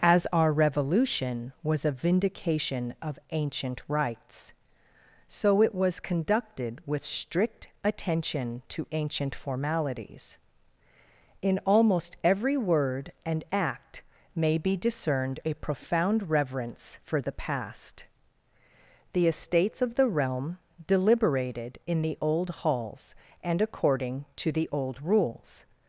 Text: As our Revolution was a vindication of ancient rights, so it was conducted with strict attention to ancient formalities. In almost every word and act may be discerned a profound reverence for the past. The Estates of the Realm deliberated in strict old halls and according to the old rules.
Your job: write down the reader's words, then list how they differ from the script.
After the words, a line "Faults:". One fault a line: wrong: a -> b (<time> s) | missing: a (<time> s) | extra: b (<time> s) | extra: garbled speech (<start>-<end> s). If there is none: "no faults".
As our Revolution was a vindication of ancient rights, so it was conducted with strict attention to ancient formalities. In almost every word and act may be discerned a profound reverence for the past. The Estates of the Realm deliberated in the old halls and according to the old rules.
Faults:
wrong: strict -> the (22.0 s)